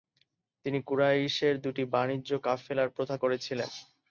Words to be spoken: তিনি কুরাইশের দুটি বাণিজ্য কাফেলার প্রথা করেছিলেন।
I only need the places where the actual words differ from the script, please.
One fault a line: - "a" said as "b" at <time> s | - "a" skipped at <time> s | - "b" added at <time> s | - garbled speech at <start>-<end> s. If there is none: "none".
none